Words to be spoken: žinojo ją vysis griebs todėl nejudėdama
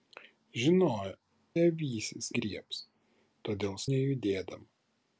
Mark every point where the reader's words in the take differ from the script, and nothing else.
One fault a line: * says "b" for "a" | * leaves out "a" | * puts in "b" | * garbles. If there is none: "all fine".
all fine